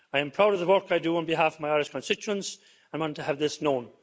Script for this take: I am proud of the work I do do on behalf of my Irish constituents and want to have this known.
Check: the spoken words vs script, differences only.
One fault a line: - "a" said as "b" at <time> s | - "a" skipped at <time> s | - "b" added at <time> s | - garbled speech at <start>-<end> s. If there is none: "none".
- "do" skipped at 1.2 s